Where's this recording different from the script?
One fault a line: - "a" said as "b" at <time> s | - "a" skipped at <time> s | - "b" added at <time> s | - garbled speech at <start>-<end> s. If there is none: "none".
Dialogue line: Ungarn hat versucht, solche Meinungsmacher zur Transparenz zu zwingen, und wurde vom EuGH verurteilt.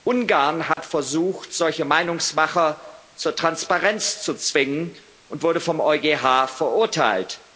none